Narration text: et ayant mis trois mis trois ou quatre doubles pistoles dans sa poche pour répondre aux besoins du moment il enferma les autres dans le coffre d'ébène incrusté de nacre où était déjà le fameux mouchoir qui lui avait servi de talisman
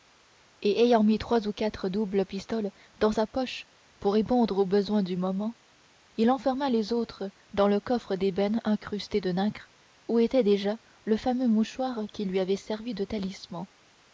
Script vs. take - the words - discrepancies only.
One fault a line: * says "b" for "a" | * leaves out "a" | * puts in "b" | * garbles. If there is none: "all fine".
* leaves out "mis trois"